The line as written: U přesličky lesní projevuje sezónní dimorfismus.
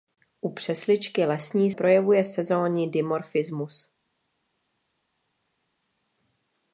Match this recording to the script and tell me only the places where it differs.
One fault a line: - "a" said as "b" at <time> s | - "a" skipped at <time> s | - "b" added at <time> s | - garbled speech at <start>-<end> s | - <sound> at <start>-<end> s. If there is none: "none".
none